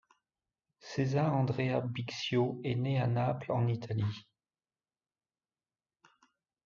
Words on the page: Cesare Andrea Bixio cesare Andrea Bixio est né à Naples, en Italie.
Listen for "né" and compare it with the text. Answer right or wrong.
right